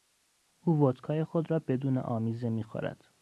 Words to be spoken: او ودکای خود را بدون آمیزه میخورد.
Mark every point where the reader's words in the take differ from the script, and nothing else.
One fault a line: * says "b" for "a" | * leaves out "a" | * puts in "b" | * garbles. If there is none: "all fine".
all fine